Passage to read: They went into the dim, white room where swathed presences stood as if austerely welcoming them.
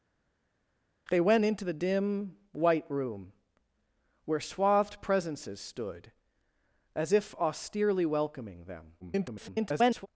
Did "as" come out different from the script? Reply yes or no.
no